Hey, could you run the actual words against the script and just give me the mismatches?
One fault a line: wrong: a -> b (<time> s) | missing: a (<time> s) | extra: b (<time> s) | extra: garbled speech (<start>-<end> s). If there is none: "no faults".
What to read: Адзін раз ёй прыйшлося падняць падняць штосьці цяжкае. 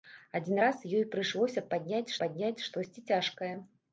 no faults